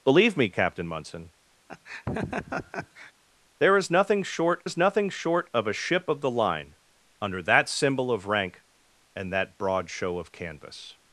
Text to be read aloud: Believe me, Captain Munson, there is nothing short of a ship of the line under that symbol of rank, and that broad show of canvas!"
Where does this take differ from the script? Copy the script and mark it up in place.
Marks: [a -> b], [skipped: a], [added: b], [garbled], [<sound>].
Believe me, Captain Munson, [laugh] there is nothing short [added: is nothing short] of a ship of the line under that symbol of rank, and that broad show of canvas!"